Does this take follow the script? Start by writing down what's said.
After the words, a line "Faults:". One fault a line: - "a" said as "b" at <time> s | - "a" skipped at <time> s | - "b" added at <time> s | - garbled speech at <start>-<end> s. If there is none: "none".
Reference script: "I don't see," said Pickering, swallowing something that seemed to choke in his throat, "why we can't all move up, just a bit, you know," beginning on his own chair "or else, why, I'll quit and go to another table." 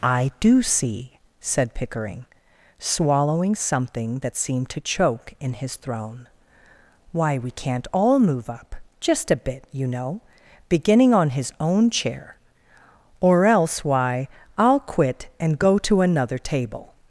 "I do see," said Pickering, swallowing something that seemed to choke in his throne, "why we can't all move up, just a bit, you know," beginning on his own chair "or else, why, I'll quit and go to another table."
Faults:
- "don't" said as "do" at 0.4 s
- "throat" said as "throne" at 5.8 s